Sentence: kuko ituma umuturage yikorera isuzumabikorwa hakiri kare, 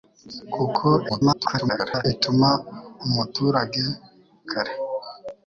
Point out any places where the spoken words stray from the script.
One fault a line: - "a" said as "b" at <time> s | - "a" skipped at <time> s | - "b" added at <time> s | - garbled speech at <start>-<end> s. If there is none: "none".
- garbled speech at 1.1-2.0 s
- "yikorera isuzumabikorwa hakiri" skipped at 3.8 s